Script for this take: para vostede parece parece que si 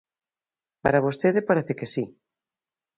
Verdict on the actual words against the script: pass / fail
fail